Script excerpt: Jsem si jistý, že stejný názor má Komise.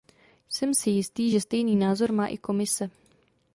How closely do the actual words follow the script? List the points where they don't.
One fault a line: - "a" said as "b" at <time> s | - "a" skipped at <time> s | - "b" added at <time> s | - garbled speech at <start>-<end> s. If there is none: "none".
- "i" added at 2.3 s